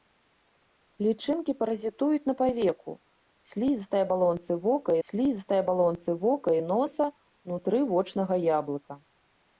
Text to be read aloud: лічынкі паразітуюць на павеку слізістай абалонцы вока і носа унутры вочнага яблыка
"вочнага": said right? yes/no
yes